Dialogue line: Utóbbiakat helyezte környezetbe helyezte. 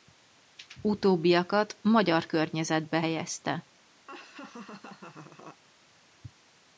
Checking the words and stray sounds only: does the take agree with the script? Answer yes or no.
no